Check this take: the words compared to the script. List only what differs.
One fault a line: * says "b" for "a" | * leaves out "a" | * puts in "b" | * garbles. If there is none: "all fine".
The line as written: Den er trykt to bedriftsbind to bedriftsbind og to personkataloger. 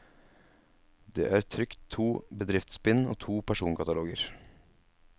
* says "Det" for "Den"
* leaves out "to bedriftsbind"